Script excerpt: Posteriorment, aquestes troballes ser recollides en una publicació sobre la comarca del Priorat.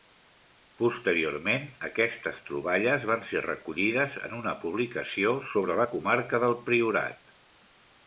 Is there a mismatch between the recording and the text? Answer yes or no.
yes